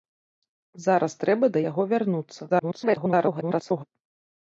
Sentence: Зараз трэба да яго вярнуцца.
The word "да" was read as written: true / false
true